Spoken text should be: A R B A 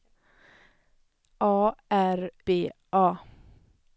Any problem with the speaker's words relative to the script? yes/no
no